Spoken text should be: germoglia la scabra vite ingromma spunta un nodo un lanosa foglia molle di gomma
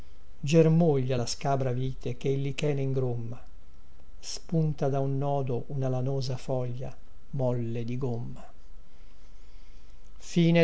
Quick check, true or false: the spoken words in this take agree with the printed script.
false